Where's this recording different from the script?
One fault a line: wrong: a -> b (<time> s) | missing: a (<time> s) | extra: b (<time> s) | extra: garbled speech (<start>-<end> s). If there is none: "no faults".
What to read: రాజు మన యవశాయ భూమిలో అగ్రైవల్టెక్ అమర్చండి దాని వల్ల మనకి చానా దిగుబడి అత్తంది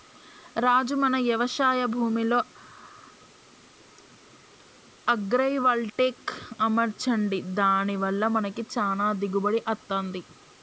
no faults